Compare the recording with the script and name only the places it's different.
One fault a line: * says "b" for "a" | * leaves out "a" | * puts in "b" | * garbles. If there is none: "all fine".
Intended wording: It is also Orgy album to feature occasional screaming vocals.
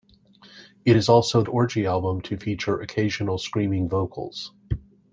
all fine